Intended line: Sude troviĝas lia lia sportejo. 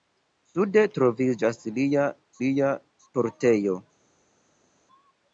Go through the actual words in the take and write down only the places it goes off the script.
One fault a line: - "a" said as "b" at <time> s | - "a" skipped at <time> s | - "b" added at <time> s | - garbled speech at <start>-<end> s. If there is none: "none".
none